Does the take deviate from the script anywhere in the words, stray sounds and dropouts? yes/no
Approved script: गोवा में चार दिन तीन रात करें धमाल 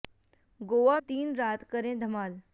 yes